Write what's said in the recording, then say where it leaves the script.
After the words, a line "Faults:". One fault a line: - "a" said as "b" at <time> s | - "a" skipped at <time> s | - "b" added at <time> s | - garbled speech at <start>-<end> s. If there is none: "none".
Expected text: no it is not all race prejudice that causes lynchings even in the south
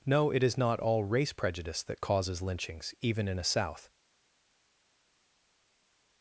no it is not all race prejudice that causes lynchings even in a south
Faults:
- "the" said as "a" at 3.4 s